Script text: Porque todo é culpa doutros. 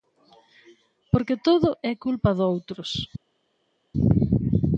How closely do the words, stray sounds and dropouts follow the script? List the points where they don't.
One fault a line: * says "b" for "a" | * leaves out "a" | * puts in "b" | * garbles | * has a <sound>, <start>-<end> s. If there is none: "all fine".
all fine